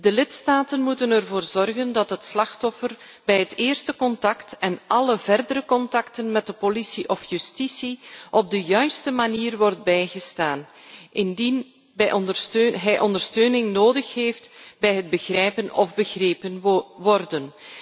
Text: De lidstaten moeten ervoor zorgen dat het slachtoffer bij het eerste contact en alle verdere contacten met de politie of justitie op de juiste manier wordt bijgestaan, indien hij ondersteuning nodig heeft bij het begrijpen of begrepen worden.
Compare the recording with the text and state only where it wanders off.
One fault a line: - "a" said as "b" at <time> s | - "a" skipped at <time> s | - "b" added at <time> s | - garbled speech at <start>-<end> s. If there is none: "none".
none